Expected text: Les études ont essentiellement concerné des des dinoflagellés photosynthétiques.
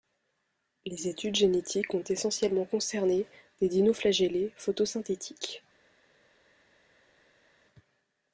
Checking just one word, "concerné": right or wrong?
right